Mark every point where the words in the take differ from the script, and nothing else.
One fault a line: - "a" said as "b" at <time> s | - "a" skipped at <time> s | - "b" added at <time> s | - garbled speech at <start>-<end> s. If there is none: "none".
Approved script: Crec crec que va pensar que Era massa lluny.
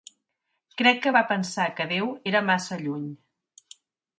- "crec" skipped at 1.0 s
- "Déu" added at 1.9 s